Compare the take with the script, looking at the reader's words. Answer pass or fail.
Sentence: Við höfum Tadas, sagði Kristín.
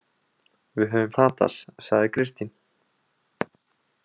pass